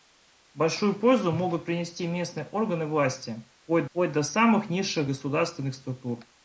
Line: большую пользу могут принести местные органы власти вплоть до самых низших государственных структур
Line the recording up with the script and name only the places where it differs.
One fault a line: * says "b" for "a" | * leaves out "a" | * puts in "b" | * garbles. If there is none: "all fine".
* puts in "вплоть"